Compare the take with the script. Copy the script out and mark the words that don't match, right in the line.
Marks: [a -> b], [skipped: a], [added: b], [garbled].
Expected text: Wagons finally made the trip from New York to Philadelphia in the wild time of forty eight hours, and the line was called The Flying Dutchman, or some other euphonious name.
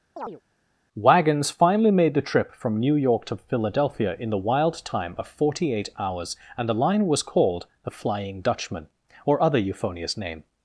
Wagons finally made the trip from New York to Philadelphia in the wild time of forty eight hours, and the line was called The Flying Dutchman, or [skipped: some] other euphonious name.